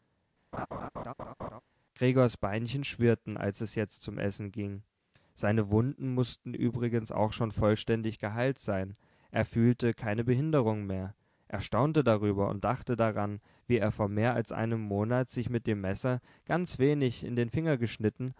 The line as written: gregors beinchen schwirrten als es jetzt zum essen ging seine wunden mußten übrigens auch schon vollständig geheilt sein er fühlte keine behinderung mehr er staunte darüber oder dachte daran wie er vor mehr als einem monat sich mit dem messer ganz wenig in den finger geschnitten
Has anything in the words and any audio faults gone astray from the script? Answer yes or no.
yes